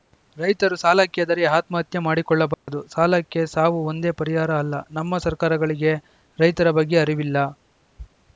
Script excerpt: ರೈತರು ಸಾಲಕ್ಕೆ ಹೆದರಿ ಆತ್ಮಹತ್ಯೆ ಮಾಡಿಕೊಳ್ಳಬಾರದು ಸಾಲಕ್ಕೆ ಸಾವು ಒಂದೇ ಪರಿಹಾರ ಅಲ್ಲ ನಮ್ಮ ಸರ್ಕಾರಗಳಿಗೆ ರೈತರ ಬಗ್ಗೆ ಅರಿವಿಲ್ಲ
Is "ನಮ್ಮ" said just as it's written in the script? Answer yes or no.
yes